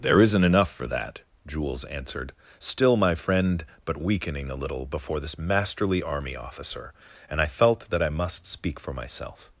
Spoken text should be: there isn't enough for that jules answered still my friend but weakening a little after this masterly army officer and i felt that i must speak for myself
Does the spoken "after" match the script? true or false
false